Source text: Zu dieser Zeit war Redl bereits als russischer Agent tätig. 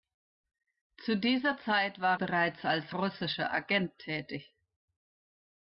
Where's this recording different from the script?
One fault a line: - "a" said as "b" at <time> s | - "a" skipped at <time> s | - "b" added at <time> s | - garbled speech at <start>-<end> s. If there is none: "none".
- "Redl" skipped at 2.2 s